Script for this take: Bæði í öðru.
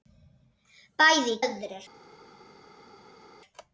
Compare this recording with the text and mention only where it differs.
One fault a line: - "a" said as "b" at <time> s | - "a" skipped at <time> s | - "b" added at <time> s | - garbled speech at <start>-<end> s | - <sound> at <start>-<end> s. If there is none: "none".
none